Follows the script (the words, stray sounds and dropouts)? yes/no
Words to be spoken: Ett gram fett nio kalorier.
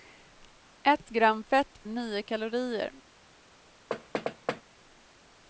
no